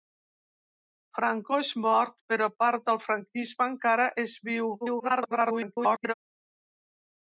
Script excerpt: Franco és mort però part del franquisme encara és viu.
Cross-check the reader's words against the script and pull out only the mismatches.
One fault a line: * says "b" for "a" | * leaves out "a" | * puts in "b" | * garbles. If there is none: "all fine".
* garbles